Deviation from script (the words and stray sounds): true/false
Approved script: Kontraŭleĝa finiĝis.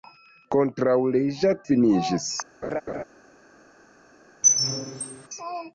true